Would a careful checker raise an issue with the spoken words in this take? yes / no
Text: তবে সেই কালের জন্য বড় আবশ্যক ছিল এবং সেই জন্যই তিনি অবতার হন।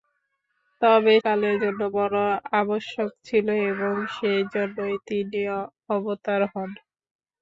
yes